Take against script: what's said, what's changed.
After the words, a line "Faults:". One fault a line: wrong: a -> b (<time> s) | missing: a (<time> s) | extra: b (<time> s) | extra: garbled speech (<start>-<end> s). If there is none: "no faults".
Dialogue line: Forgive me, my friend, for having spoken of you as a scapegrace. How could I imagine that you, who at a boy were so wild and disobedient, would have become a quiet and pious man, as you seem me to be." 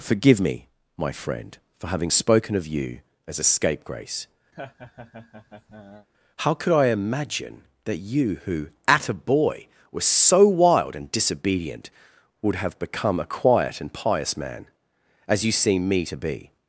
Forgive me, my friend, for having spoken of you as a scapegrace. How could I imagine that you, who at a boy were so wild and disobedient, would have become a quiet and pious man, as you seem me to be."
Faults:
no faults